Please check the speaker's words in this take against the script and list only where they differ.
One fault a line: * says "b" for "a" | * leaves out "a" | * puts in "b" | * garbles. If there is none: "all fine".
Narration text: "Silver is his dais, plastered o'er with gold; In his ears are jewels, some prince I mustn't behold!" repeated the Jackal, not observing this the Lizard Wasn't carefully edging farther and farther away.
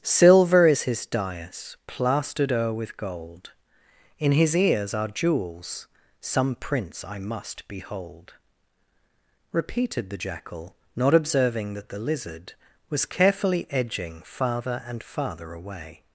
* says "must" for "mustn't"
* says "that" for "this"
* says "Was" for "Wasn't"